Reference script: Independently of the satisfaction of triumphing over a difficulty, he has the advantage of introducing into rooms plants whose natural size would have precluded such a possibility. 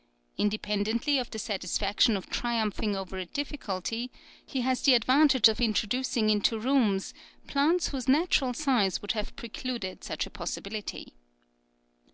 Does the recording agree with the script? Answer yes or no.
yes